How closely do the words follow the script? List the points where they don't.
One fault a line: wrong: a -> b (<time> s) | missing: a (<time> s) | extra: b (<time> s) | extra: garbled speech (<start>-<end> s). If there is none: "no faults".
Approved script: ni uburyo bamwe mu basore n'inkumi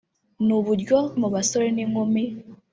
missing: bamwe (1.0 s)